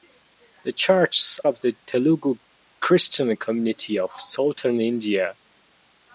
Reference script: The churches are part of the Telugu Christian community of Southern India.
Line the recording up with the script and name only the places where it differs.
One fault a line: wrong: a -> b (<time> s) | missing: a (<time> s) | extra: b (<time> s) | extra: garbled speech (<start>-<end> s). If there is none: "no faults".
missing: are part (1.4 s)